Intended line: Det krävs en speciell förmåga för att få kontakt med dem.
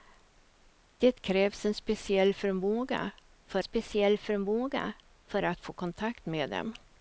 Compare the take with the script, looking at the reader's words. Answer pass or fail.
fail